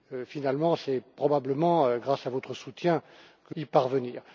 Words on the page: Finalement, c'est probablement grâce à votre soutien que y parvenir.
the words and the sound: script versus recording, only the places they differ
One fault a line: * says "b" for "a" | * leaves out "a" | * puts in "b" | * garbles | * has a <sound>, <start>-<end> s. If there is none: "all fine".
all fine